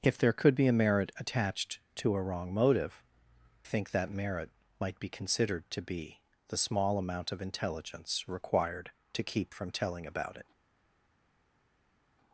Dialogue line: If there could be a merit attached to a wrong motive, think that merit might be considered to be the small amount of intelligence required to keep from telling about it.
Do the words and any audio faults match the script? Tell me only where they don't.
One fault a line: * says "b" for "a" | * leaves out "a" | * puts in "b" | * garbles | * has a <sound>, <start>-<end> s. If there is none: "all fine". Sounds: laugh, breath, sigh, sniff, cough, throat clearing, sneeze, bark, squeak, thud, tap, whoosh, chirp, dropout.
all fine